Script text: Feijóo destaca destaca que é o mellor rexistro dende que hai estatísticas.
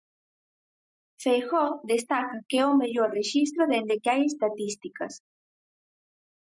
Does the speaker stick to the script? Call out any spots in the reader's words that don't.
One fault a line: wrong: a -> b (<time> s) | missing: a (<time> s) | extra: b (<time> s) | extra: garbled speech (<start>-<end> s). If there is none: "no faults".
missing: destaca (2.4 s)